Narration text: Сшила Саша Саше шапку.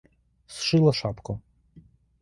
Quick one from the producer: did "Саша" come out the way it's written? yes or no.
no